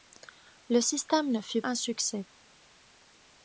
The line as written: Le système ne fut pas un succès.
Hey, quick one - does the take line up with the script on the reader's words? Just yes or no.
no